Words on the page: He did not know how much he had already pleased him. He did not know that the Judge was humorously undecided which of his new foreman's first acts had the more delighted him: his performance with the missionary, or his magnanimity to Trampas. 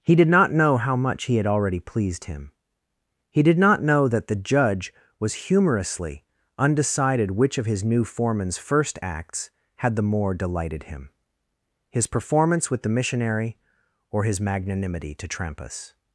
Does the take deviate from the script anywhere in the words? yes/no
no